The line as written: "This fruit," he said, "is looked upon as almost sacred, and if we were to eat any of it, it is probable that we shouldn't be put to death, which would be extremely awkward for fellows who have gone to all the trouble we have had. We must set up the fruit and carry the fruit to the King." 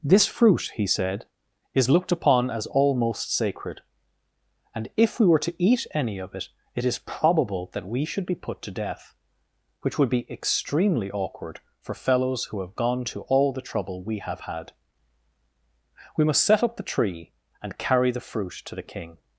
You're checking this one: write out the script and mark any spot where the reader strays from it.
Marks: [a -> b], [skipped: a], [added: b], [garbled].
"This fruit," he said, "is looked upon as almost sacred, and if we were to eat any of it, it is probable that we [shouldn't -> should] be put to death, which would be extremely awkward for fellows who have gone to all the trouble we have had. We must set up the [fruit -> tree] and carry the fruit to the King."